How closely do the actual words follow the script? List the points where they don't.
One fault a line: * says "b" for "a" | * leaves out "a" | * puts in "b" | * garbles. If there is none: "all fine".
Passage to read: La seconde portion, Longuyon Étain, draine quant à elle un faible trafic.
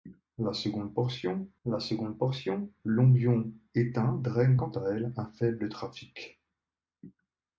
* puts in "la seconde portion"